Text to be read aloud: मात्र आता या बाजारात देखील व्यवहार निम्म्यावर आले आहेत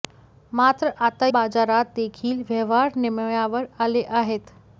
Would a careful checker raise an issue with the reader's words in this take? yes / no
yes